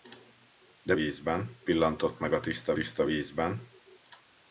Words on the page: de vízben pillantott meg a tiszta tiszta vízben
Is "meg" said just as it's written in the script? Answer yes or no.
yes